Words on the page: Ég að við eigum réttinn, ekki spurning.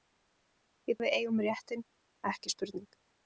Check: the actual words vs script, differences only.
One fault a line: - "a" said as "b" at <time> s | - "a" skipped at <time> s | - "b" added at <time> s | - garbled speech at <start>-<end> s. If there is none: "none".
none